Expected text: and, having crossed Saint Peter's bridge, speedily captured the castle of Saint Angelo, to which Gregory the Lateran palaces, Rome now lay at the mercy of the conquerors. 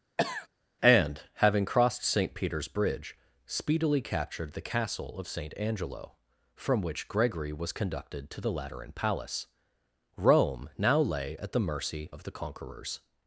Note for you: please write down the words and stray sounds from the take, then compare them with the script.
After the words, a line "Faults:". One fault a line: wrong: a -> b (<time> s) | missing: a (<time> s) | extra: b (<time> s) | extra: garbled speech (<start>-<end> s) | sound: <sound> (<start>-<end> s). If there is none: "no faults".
and, having crossed Saint Peter's bridge, speedily captured the castle of Saint Angelo, from which Gregory was conducted to the Lateran palace, Rome now lay at the mercy of the conquerors.
Faults:
sound: cough (0.2-0.5 s)
wrong: to -> from (6.5 s)
extra: was conducted to (7.5 s)
wrong: palaces -> palace (8.9 s)